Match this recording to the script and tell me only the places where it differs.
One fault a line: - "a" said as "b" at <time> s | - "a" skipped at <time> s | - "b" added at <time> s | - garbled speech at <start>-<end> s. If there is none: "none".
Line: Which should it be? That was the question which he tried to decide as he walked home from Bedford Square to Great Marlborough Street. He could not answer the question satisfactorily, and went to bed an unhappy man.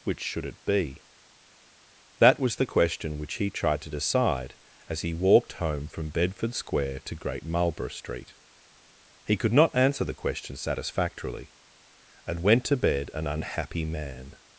none